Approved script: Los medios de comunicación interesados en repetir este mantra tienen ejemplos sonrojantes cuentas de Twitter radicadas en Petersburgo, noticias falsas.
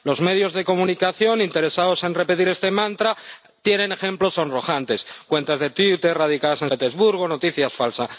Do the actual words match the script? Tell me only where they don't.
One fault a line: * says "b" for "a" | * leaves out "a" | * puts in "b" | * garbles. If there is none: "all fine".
all fine